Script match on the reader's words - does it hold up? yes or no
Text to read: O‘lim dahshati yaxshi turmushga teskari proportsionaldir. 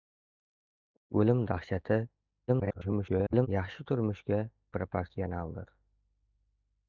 no